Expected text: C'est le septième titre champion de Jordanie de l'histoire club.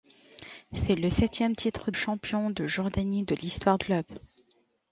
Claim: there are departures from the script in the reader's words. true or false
false